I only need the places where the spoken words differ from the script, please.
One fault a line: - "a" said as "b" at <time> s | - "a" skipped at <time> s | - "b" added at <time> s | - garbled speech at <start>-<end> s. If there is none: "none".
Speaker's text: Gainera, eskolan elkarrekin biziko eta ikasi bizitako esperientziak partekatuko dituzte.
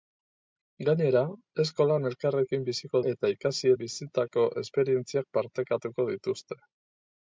none